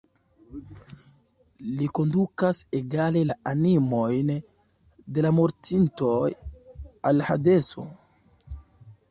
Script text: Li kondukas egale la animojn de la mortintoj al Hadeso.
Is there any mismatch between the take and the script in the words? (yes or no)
no